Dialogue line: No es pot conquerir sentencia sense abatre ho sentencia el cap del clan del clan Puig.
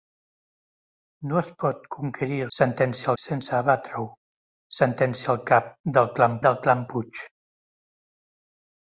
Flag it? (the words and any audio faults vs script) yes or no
no